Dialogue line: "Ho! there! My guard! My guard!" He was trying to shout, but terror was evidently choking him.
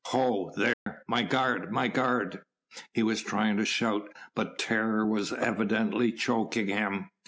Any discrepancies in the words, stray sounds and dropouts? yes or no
yes